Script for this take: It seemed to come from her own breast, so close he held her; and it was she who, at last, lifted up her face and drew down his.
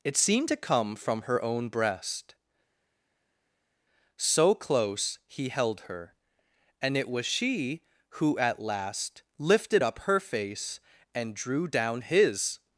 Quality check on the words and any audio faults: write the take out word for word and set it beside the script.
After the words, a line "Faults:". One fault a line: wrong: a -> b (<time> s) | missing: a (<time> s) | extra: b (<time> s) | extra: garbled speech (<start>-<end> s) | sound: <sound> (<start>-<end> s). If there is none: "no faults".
It seemed to come from her own breast, so close he held her; and it was she who, at last, lifted up her face and drew down his.
Faults:
no faults